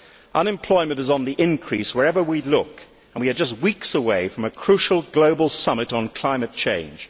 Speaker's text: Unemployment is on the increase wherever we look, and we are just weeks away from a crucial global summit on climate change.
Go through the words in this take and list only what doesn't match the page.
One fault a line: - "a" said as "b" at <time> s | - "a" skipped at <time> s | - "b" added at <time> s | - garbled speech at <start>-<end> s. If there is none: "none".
none